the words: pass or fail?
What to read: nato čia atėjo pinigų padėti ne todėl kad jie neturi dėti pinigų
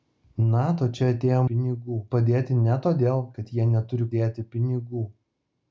pass